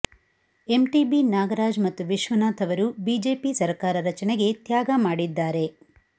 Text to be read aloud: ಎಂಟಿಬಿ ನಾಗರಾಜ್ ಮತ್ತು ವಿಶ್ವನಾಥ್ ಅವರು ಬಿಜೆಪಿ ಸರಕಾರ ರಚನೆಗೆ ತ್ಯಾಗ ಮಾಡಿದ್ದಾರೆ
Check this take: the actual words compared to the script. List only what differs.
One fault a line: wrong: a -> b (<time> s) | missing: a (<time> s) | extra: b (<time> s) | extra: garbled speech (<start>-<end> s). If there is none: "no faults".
no faults